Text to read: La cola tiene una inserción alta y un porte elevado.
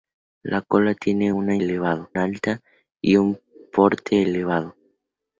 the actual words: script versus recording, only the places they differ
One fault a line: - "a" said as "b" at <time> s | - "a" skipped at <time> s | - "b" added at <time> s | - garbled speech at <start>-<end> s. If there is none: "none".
- "inserción" said as "elevado" at 1.6 s